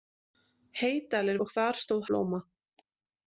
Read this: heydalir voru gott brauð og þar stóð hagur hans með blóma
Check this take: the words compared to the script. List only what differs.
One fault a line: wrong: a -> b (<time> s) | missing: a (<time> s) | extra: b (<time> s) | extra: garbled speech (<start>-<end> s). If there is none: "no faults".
missing: voru gott brauð (1.4 s)
missing: hagur hans með (2.1 s)